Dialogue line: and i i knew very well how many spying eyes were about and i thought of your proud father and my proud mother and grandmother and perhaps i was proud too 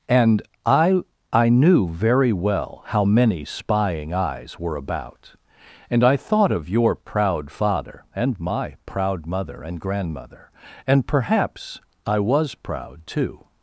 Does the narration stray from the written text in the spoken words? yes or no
no